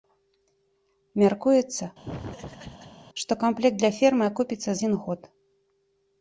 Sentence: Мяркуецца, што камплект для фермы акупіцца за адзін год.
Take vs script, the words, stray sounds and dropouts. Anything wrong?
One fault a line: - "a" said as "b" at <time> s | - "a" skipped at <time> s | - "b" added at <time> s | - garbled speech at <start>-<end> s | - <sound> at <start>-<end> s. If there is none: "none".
- laugh at 2.0-3.0 s
- "за" skipped at 4.7 s